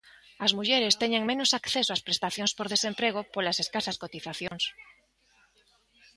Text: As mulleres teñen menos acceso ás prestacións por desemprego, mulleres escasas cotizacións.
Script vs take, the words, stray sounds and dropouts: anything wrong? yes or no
yes